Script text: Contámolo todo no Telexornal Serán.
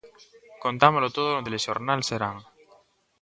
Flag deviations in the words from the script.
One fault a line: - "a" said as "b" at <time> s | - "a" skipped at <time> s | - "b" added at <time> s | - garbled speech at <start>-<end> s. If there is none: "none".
none